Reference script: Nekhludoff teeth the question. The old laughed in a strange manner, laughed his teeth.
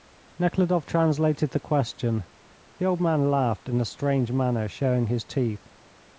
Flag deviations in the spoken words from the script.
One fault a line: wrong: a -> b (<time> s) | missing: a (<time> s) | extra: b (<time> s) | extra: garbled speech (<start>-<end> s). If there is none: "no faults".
wrong: teeth -> translated (0.9 s)
extra: man (3.0 s)
wrong: laughed -> showing (4.7 s)